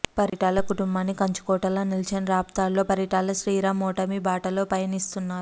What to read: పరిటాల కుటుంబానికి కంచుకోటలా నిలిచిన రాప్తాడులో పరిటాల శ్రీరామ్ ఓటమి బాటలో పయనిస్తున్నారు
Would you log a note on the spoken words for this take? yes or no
no